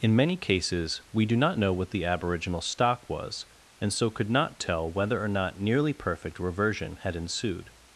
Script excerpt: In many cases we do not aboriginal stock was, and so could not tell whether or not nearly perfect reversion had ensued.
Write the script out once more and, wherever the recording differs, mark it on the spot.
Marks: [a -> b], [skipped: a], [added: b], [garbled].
In many cases we do not [added: know what the] aboriginal stock was, and so could not tell whether or not nearly perfect reversion had ensued.